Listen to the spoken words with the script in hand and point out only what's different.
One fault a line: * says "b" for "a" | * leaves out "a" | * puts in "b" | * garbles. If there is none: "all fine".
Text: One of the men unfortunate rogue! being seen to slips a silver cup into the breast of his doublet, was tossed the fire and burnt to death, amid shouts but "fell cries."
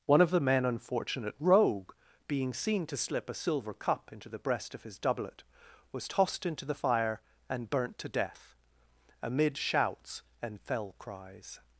* says "slip" for "slips"
* puts in "into"
* says "and" for "but"